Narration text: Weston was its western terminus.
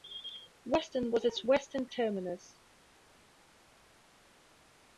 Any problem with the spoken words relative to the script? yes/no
no